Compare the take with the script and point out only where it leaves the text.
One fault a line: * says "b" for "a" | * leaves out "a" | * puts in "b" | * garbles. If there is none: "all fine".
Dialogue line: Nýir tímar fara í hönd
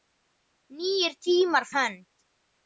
* leaves out "fara"